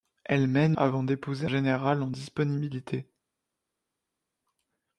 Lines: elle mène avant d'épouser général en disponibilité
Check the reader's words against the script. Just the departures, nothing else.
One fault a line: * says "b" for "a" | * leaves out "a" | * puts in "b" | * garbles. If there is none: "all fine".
all fine